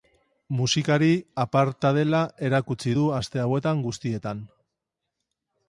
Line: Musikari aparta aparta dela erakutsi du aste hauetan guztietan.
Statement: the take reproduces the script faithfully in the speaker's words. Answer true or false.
false